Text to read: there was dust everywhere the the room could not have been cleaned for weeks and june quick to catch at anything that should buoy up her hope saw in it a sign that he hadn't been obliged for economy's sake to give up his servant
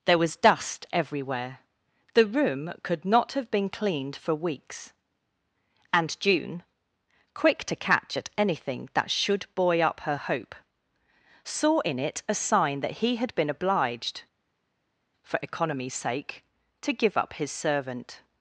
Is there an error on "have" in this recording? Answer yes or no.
no